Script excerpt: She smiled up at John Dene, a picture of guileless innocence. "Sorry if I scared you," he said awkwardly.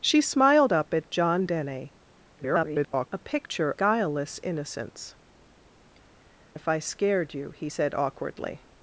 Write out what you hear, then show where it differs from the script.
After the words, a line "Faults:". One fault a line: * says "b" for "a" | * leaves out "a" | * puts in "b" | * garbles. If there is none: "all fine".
She smiled up at John Dene, [garbled] a picture guileless innocence. "If I scared you," he said awkwardly.
Faults:
* garbles
* leaves out "of"
* leaves out "Sorry"